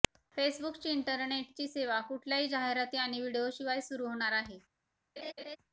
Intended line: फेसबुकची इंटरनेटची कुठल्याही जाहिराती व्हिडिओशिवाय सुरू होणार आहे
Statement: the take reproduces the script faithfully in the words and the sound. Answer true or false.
false